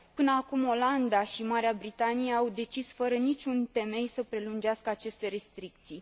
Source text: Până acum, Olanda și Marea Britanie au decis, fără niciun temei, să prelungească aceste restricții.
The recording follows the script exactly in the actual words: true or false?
true